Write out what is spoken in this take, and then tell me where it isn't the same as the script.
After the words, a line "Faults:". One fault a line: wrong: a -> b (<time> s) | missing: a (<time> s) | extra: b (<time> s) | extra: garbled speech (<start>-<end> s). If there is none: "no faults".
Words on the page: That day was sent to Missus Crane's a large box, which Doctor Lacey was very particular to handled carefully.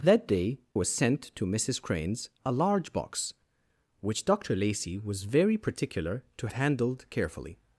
That day was sent to Missus Crane's a large box, which Doctor Lacey was very particular to handled carefully.
Faults:
no faults